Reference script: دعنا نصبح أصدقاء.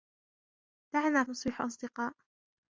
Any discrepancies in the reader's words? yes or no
no